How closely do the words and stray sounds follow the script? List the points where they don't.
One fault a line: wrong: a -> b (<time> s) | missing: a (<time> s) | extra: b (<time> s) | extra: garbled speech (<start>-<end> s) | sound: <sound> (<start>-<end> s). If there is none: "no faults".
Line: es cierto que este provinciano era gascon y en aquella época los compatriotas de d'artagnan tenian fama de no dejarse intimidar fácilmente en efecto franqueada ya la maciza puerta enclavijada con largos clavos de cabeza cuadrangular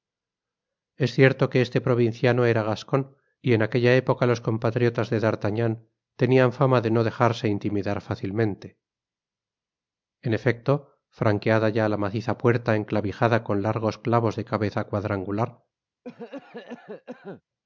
sound: cough (16.0-17.4 s)